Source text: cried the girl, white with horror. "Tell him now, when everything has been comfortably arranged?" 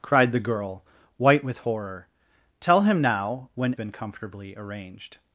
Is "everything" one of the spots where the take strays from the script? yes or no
yes